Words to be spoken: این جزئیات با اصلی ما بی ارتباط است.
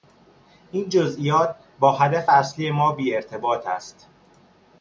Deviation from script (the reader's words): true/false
true